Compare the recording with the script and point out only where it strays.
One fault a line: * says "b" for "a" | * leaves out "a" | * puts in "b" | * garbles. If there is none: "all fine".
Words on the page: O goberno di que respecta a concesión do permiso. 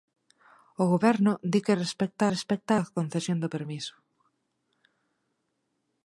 * puts in "respecta"